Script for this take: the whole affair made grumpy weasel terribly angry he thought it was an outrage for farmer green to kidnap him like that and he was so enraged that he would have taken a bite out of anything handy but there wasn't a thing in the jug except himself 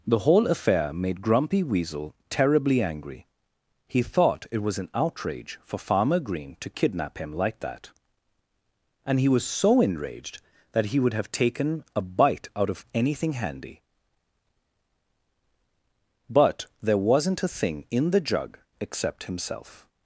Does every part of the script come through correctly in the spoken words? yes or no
yes